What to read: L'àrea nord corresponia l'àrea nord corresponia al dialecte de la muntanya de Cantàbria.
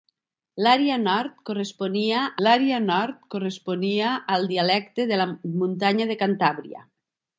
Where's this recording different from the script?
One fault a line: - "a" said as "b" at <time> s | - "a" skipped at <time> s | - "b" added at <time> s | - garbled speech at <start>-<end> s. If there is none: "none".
none